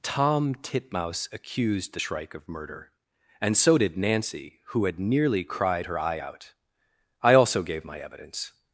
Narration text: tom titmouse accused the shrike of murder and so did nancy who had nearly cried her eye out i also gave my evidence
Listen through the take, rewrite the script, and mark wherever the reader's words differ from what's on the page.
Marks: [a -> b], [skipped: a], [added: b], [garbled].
tom titmouse accused the shrike of murder and so did nancy who had nearly cried her eye out i also gave my evidence